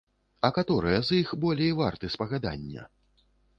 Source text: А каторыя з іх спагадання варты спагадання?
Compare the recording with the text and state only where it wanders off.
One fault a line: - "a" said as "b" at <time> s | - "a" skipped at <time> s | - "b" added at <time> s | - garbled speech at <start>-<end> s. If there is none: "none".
- "спагадання" said as "болей" at 1.4 s